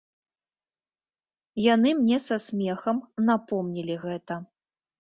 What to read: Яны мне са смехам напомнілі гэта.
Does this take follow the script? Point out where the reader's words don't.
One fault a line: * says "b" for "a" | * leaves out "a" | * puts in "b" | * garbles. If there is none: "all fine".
all fine